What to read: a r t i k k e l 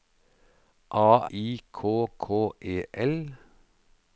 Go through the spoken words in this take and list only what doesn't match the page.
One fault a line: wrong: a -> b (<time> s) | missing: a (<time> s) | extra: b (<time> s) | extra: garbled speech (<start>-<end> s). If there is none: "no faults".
missing: r t (1.3 s)